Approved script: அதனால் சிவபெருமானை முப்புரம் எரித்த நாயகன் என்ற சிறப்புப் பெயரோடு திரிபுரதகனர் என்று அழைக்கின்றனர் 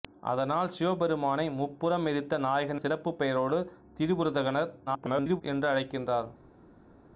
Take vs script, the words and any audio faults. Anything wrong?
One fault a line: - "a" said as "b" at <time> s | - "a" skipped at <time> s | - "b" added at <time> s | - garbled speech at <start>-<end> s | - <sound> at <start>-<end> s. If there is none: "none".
- "என்ற" skipped at 2.8 s
- garbled speech at 4.9-5.4 s